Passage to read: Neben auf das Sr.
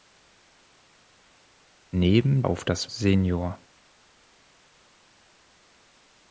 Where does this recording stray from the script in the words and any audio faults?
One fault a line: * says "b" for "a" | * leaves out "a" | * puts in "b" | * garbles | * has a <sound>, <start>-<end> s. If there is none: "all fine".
all fine